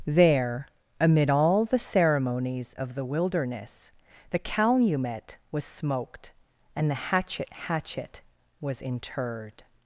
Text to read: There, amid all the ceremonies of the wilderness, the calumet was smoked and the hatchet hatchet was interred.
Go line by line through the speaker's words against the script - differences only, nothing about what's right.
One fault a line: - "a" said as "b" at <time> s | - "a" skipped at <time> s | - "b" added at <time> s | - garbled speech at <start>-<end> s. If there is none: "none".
none